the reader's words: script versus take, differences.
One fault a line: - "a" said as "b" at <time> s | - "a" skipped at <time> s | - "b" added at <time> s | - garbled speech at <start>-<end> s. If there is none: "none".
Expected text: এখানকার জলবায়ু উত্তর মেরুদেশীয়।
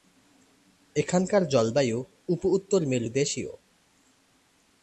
- "উপ" added at 2.3 s